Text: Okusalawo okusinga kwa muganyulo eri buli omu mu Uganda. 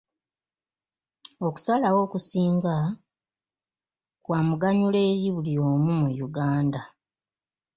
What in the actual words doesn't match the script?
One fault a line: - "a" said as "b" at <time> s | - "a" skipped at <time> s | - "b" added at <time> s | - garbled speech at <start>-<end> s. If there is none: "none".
none